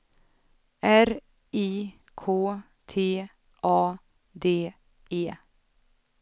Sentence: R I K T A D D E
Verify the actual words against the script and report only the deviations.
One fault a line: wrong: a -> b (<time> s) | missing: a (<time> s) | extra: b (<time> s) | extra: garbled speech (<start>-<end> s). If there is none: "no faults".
missing: D (4.7 s)